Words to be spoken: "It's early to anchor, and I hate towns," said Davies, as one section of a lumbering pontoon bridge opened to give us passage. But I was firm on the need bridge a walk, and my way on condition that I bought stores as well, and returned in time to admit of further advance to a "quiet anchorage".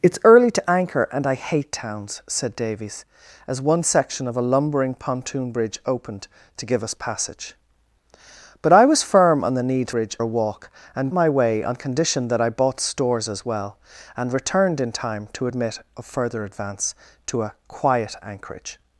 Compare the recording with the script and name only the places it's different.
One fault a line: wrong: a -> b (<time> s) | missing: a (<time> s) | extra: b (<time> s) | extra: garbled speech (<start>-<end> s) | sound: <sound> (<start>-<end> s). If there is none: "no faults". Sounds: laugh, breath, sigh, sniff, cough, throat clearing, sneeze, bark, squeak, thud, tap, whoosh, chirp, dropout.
no faults